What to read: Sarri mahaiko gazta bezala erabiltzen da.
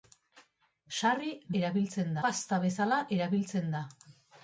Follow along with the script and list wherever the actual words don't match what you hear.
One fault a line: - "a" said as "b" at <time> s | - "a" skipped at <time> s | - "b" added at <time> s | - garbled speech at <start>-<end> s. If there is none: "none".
- "mahaiko" said as "erabiltzen" at 1.6 s